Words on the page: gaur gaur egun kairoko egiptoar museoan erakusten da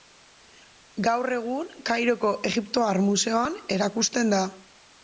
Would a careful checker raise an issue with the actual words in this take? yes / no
yes